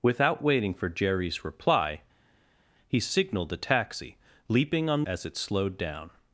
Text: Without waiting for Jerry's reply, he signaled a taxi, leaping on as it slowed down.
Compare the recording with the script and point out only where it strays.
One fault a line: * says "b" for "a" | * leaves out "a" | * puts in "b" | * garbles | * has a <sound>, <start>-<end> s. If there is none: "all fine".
all fine